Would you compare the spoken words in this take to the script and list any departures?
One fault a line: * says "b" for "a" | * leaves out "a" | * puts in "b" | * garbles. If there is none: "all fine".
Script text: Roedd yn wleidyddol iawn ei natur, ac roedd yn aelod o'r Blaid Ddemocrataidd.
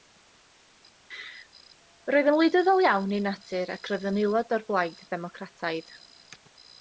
all fine